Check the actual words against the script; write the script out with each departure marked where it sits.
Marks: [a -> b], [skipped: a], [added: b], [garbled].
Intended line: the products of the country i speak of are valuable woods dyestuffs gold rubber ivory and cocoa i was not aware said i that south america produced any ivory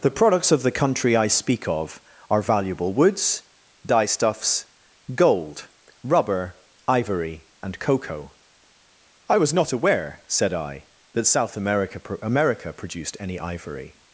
the products of the country i speak of are valuable woods dyestuffs gold rubber ivory and cocoa i was not aware said i that south america [added: america] produced any ivory